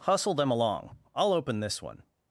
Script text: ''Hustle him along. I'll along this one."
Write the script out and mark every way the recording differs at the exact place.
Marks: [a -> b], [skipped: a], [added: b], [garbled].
''Hustle [him -> them] along. I'll [along -> open] this one."